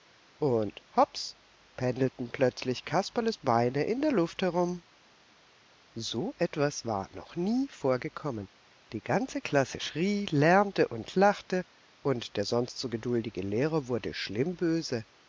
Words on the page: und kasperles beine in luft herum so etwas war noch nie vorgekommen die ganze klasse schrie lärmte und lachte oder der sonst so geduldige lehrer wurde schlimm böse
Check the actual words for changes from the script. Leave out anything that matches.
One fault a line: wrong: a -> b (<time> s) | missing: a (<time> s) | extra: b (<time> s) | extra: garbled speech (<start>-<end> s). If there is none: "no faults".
extra: hops pendelten plötzlich (0.9 s)
extra: der (4.0 s)
wrong: oder -> und (12.0 s)